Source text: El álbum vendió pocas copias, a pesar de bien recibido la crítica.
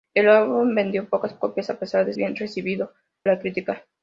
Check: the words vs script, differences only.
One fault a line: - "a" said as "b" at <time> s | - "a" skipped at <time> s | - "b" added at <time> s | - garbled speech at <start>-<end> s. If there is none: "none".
none